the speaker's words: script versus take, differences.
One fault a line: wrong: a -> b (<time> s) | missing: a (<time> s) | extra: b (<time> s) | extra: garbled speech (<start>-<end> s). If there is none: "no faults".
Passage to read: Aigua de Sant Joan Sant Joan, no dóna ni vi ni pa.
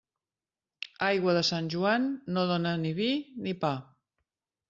missing: Sant Joan (2.1 s)